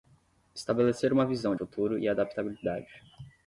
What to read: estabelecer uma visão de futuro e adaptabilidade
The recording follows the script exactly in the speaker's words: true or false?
false